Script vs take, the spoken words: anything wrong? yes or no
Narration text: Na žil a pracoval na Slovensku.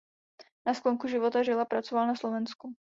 yes